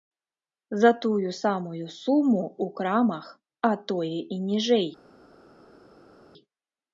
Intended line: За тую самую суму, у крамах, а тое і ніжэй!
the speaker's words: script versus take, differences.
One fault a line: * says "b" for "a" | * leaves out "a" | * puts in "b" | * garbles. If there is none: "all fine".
all fine